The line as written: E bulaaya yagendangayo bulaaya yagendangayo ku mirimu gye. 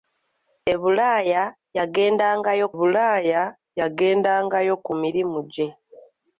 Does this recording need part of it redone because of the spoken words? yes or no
no